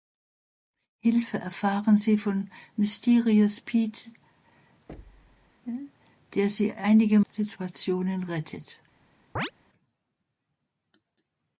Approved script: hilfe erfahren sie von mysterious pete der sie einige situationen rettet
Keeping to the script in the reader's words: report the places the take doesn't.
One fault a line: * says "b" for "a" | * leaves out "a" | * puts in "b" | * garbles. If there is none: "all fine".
all fine